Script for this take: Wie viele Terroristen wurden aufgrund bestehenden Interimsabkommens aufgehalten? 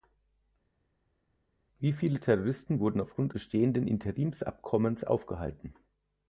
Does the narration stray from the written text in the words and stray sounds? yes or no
no